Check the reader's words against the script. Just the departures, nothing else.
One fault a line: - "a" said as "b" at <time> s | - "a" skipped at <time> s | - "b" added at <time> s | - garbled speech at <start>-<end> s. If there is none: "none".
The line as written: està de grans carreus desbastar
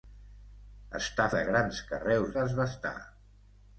none